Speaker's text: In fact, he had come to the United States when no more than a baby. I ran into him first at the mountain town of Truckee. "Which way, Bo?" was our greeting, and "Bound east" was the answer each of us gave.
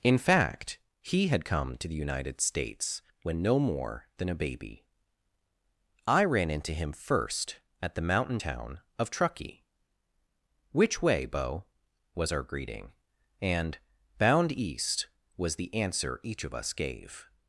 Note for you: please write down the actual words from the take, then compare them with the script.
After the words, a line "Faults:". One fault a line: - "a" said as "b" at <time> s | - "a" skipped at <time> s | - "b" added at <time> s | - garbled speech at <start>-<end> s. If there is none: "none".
In fact, he had come to the United States when no more than a baby. I ran into him first at the mountain town of Truckee. "Which way, Bo?" was our greeting, and "Bound east" was the answer each of us gave.
Faults:
none